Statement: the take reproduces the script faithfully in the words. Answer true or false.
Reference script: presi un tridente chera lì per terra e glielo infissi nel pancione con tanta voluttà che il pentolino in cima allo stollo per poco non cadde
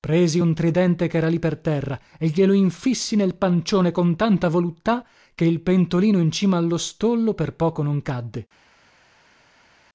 true